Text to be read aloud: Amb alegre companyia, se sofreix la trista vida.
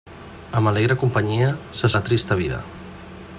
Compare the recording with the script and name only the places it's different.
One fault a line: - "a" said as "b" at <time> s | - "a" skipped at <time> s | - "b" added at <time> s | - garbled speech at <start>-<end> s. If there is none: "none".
- "sofreix" skipped at 1.9 s